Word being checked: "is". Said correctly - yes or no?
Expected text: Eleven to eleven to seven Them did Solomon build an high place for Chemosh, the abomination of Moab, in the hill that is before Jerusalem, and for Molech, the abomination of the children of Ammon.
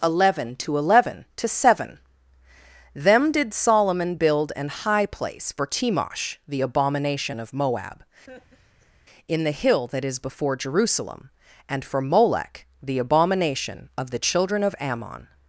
yes